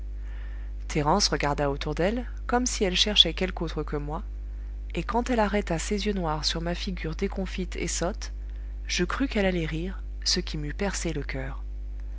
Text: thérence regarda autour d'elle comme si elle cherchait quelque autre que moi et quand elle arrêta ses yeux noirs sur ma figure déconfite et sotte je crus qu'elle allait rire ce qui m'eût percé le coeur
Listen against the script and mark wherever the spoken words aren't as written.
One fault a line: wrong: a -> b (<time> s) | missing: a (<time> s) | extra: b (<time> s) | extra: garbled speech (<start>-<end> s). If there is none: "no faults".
no faults